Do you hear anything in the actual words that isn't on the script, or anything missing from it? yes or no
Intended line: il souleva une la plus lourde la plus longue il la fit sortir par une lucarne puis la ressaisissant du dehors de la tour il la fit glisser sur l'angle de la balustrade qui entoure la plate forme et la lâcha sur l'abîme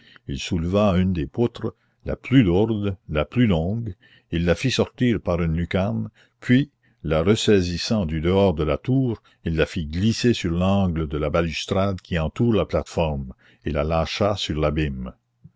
yes